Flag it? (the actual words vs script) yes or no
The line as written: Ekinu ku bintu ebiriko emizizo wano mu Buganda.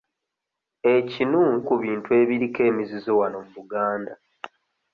no